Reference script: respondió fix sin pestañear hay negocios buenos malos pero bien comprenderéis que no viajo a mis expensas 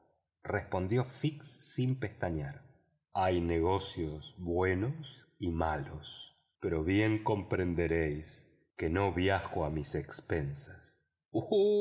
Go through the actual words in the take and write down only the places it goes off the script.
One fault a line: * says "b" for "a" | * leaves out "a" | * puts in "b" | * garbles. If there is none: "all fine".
* puts in "y"